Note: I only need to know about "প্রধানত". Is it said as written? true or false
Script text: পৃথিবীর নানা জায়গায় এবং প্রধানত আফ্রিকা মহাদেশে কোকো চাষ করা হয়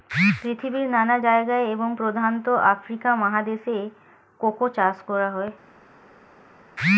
true